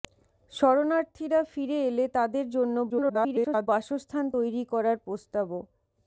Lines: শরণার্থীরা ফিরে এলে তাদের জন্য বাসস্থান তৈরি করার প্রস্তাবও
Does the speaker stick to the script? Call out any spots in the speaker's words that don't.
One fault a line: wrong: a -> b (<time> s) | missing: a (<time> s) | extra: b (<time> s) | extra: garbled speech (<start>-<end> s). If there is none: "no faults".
extra: garbled speech (2.9-3.7 s)